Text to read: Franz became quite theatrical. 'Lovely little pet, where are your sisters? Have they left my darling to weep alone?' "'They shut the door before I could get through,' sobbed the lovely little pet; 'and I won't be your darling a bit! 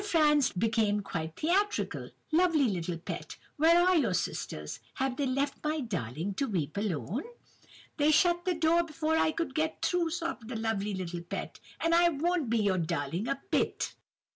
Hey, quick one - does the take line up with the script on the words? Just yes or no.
yes